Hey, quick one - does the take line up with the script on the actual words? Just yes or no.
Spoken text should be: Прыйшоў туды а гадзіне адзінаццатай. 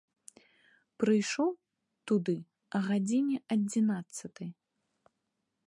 yes